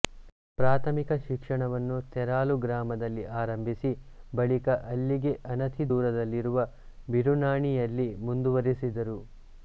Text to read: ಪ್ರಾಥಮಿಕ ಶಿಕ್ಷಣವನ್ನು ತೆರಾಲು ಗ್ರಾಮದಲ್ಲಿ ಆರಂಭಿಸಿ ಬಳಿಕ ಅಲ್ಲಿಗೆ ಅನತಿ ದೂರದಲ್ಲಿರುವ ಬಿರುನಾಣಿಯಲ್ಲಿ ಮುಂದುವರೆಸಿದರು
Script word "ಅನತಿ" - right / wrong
right